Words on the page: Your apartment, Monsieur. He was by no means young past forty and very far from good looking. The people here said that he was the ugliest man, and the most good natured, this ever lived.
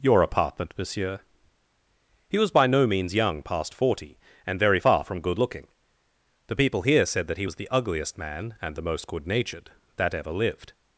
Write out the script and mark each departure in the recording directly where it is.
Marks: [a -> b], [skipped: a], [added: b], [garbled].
Your apartment, Monsieur. He was by no means young past forty and very far from good looking. The people here said that he was the ugliest man, and the most good natured, [this -> that] ever lived.